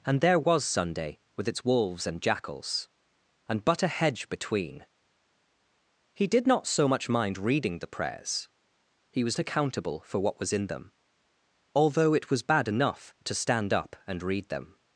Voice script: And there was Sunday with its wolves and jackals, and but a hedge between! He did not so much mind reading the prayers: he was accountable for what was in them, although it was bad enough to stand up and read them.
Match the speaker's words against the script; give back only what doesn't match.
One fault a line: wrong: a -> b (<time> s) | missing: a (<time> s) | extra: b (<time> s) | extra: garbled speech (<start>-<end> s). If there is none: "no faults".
no faults